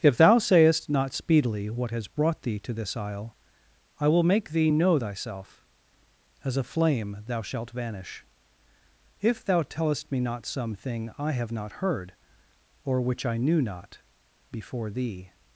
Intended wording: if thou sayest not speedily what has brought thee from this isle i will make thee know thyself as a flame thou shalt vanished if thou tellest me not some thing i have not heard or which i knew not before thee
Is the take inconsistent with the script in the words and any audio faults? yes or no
yes